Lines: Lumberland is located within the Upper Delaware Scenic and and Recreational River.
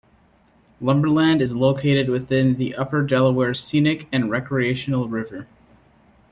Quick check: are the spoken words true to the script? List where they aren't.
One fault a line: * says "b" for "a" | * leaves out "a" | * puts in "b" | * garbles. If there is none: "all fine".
* leaves out "and"